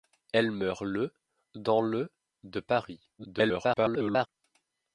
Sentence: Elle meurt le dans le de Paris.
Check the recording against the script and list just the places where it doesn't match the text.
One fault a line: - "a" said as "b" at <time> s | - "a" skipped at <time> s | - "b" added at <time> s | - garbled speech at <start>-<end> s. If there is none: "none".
- garbled speech at 3.2-4.3 s